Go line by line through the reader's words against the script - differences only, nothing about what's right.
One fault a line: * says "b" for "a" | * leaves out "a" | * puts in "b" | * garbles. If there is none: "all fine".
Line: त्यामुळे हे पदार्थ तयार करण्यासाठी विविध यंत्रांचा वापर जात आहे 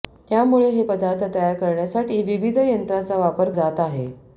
all fine